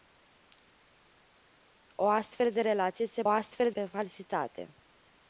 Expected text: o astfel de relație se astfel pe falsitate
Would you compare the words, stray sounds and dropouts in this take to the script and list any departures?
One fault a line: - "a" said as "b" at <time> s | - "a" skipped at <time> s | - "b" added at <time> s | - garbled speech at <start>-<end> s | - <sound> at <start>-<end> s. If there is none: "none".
none